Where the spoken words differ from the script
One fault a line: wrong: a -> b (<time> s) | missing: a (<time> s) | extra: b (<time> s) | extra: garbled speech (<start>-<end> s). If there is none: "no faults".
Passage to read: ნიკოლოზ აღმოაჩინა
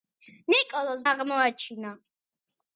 no faults